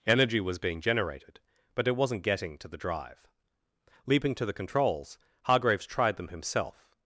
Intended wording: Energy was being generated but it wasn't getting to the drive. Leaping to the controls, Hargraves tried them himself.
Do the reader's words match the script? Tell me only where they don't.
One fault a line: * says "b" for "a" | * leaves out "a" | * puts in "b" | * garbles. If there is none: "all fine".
all fine